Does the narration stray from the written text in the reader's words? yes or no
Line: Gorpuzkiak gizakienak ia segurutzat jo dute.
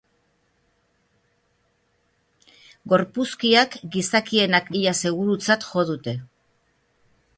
no